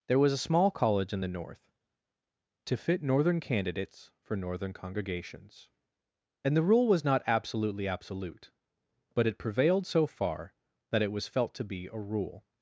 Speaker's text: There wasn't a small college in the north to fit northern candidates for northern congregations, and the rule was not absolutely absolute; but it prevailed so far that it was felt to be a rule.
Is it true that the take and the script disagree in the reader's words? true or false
true